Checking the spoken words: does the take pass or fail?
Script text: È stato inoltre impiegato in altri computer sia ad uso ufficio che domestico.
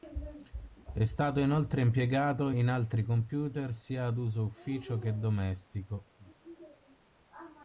pass